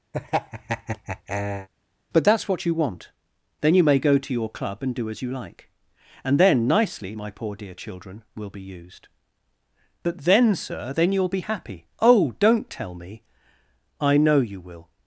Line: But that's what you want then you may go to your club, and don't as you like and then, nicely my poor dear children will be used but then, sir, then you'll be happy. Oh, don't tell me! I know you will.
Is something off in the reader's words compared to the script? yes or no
yes